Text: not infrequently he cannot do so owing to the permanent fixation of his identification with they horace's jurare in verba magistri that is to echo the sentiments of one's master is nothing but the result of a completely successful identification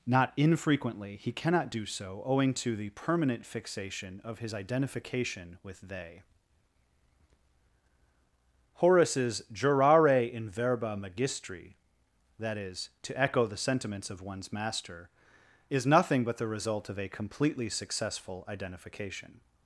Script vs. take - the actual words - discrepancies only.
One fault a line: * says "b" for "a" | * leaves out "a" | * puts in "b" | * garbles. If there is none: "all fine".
all fine